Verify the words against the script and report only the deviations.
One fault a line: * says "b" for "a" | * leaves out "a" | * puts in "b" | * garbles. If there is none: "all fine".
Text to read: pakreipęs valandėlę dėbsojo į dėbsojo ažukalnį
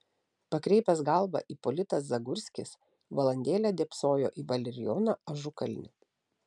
* puts in "galvą ipolitas zagurskis"
* says "valerijoną" for "dėbsojo"